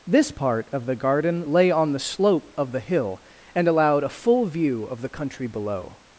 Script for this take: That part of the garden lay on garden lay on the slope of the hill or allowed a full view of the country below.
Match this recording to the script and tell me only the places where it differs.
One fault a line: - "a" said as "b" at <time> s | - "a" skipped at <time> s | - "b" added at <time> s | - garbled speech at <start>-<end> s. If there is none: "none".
- "That" said as "This" at 0.1 s
- "garden lay on" skipped at 1.9 s
- "or" said as "and" at 3.5 s